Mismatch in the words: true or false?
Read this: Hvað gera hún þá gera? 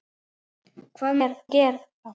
false